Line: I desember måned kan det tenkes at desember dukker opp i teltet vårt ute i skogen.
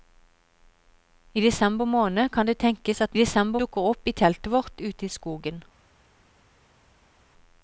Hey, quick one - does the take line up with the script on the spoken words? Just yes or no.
yes